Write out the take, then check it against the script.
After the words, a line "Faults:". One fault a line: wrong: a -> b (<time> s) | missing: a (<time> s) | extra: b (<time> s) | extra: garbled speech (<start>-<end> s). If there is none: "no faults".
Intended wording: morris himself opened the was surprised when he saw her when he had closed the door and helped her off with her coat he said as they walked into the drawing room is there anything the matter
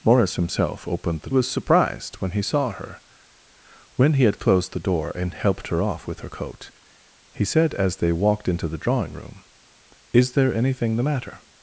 morris himself opened the was surprised when he saw her when he had closed the door and helped her off with her coat he said as they walked into the drawing room is there anything the matter
Faults:
no faults